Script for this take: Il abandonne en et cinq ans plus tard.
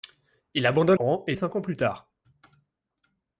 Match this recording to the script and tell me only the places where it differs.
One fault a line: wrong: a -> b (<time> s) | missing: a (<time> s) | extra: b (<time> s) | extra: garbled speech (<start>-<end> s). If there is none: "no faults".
no faults